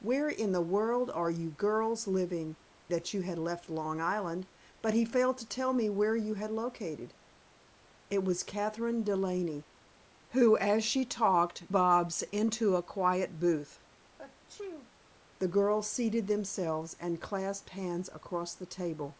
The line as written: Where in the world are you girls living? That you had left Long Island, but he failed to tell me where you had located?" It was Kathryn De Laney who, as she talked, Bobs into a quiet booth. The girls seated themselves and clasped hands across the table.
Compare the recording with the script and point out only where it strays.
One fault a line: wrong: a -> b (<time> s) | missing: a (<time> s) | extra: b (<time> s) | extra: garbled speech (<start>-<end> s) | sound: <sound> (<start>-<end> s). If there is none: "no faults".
sound: sneeze (14.2-14.9 s)